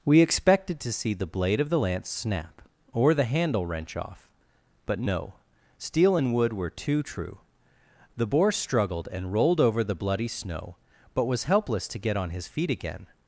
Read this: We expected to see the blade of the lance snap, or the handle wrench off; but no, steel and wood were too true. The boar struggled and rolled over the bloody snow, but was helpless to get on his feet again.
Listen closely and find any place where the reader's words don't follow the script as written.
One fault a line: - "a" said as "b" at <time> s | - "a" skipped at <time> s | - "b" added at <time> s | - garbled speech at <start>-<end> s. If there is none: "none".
none